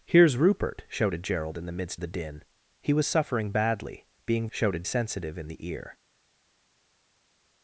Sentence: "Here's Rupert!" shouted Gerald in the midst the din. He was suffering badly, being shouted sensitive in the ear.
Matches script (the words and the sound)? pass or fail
pass